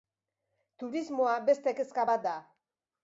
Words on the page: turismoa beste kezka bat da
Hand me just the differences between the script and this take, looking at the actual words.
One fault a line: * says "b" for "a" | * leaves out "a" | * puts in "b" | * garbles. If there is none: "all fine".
all fine